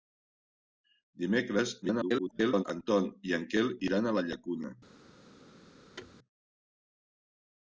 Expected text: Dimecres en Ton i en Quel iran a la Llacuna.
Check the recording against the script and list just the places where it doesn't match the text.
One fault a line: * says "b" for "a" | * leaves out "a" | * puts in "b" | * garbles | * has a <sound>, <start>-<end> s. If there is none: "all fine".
* garbles
* has a thud, 6.0-6.2 s